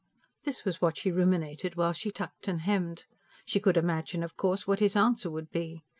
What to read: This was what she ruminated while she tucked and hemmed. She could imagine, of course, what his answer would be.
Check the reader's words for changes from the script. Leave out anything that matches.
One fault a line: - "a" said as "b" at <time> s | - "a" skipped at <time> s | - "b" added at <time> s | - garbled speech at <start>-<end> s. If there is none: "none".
none